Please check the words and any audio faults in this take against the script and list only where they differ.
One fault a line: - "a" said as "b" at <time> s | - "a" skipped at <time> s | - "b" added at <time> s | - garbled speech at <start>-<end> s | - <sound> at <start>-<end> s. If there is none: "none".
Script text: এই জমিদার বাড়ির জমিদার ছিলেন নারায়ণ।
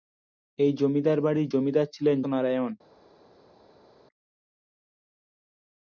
none